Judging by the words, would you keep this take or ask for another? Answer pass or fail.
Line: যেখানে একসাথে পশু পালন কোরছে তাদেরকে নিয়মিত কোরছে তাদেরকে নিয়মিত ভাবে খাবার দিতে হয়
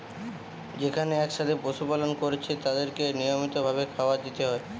fail